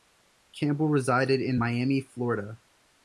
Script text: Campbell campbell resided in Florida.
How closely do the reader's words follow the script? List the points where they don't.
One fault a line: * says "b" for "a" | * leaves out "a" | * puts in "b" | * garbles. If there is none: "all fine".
* leaves out "campbell"
* puts in "Miami"